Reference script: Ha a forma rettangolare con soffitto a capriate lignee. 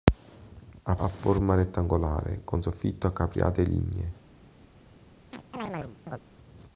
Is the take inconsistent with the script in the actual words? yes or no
no